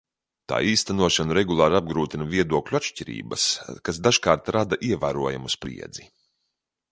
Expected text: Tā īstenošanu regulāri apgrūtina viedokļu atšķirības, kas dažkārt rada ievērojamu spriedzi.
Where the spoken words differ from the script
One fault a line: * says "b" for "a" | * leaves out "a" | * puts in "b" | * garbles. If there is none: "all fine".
all fine